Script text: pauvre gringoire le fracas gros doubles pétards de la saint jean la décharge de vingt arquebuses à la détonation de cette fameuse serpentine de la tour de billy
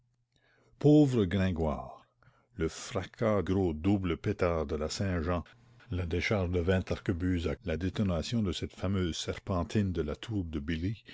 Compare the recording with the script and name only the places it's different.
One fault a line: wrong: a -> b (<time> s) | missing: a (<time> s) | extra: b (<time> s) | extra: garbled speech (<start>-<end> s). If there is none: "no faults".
no faults